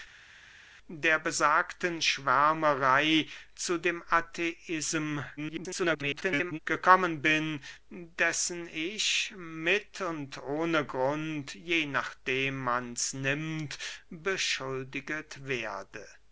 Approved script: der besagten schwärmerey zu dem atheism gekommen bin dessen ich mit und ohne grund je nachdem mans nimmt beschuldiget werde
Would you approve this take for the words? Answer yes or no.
no